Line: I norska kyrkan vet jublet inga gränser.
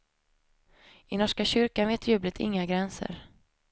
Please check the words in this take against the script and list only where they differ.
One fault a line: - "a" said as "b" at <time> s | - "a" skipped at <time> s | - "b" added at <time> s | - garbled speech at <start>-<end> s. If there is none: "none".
none